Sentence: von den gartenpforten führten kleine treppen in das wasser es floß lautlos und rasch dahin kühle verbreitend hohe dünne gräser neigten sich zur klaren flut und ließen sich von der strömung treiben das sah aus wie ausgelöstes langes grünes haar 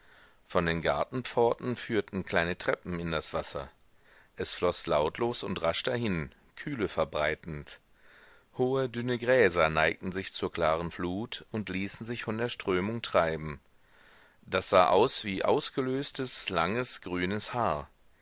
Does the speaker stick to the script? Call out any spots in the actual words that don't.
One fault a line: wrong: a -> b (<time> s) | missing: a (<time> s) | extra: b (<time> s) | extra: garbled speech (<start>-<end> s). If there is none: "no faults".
no faults